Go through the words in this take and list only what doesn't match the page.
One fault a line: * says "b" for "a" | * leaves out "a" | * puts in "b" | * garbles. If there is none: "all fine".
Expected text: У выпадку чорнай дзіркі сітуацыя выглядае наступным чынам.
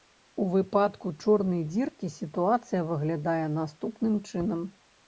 all fine